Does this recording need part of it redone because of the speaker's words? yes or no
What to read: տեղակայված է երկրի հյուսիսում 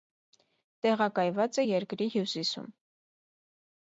no